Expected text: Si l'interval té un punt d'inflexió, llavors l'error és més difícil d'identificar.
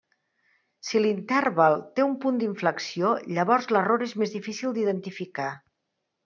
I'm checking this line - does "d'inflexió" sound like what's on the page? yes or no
yes